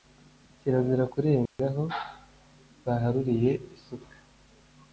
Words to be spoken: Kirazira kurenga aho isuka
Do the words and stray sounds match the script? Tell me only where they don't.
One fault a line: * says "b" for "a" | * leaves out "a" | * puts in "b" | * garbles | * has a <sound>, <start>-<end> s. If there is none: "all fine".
* has a dropout, 1.5-1.6 s
* puts in "baharuriye"